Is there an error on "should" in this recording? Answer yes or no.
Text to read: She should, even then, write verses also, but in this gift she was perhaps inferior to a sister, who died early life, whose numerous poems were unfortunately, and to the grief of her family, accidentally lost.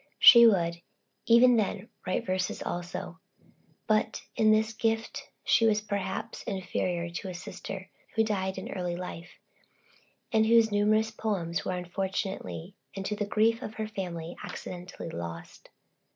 yes